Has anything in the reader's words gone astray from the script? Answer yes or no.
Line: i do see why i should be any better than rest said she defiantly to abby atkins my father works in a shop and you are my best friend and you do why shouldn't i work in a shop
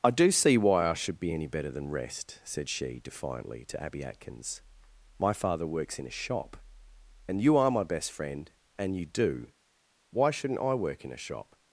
no